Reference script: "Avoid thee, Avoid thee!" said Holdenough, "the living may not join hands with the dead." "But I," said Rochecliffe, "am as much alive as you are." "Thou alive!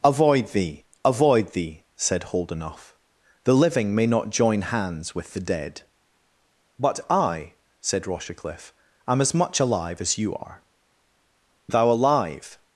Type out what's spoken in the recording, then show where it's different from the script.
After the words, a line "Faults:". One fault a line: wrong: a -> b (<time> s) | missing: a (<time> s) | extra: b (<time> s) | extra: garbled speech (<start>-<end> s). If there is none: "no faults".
"Avoid thee, Avoid thee!" said Holdenough, "the living may not join hands with the dead." "But I," said Rochecliffe, "am as much alive as you are." "Thou alive!
Faults:
no faults